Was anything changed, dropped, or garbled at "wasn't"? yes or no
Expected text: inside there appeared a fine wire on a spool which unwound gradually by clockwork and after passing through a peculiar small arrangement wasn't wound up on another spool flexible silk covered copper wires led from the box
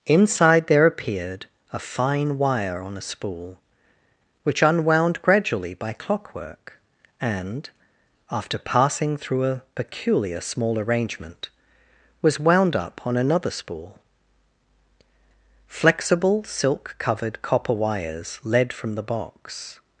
yes